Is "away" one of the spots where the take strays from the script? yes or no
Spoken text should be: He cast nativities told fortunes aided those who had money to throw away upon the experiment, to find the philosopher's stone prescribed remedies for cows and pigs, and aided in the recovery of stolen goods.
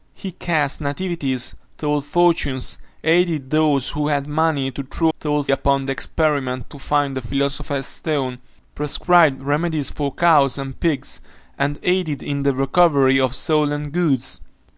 yes